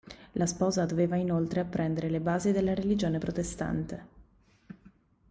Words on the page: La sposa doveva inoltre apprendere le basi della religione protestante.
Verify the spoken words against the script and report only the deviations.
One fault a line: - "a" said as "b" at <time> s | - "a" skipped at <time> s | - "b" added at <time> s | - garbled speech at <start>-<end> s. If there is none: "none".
none